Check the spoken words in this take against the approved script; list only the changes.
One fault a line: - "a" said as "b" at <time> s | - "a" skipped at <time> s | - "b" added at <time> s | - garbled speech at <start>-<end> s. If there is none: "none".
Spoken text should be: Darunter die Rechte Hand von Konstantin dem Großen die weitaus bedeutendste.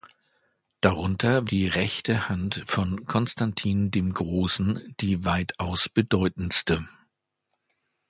none